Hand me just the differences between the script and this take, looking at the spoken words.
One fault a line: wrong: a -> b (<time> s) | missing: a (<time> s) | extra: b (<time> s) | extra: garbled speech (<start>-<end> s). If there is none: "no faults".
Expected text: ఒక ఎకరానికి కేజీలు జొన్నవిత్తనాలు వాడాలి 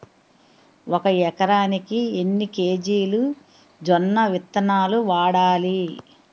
extra: ఎన్ని (2.2 s)